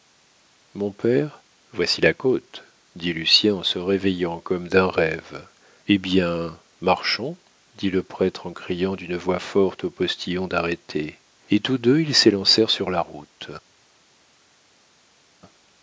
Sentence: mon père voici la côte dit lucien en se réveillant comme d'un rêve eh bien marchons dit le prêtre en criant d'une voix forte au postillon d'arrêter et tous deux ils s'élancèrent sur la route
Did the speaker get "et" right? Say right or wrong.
right